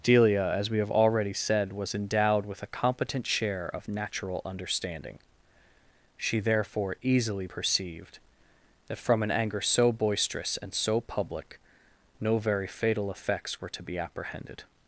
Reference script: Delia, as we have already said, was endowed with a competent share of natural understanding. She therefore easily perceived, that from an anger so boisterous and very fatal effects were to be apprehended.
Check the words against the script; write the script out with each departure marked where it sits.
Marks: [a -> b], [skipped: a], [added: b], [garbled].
Delia, as we have already said, was endowed with a competent share of natural understanding. She therefore easily perceived, that from an anger so boisterous and [added: so public no] very fatal effects were to be apprehended.